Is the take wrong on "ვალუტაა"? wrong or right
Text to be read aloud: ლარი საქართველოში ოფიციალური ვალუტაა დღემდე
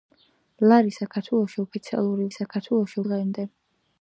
wrong